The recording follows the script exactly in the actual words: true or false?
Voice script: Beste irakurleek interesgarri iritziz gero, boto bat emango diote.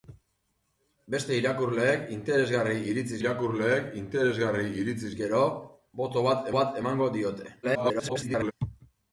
false